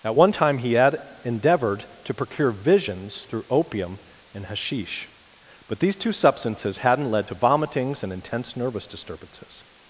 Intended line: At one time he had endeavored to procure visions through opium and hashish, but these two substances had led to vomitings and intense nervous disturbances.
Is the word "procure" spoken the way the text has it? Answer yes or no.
yes